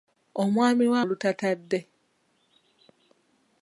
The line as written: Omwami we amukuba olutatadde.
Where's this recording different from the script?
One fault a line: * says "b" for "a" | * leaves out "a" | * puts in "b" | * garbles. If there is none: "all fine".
* leaves out "amukuba"